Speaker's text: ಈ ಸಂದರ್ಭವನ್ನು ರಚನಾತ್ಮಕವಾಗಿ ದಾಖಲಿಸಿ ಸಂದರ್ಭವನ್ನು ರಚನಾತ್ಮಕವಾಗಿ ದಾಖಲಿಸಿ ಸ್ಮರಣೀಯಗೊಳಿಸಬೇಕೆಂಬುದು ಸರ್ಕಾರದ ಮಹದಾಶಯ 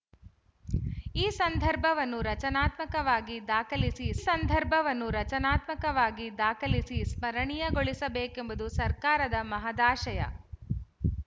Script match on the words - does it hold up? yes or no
yes